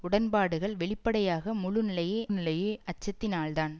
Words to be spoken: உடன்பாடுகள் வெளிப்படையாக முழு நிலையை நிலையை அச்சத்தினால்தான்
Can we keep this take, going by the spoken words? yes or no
yes